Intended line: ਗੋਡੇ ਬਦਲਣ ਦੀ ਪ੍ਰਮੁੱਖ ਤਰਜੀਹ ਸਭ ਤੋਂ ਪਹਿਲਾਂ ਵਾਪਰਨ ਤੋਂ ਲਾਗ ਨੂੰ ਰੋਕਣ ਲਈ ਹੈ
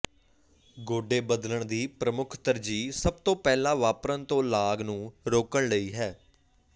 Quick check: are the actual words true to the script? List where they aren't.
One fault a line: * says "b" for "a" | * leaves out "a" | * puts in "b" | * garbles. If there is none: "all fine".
all fine